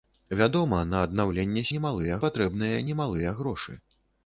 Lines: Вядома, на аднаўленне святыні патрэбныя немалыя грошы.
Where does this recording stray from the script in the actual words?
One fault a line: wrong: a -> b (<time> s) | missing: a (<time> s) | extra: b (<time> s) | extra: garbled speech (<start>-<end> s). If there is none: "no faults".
wrong: святыні -> немалыя (1.8 s)